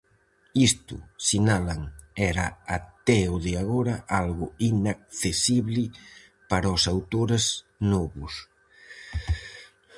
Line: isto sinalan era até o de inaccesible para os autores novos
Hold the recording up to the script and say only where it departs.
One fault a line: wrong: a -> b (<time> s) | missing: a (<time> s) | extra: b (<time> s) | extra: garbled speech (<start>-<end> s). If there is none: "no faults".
extra: agora algo (3.6 s)